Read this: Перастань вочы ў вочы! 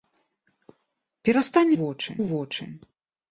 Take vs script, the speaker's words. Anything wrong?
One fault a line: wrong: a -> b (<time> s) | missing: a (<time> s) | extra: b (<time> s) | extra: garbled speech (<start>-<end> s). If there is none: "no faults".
no faults